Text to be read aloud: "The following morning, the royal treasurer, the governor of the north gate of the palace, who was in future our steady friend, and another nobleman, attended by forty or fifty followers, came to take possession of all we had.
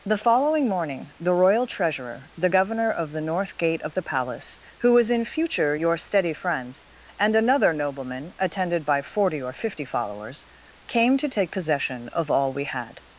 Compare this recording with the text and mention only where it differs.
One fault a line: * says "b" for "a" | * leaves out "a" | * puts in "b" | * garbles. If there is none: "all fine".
* says "your" for "our"